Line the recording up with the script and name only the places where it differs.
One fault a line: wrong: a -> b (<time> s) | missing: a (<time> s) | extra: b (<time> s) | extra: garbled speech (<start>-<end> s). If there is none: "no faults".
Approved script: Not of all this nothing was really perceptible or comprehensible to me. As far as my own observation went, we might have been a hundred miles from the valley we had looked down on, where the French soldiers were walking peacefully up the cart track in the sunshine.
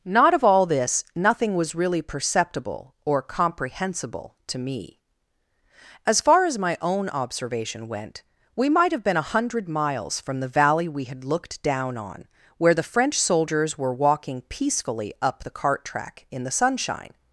no faults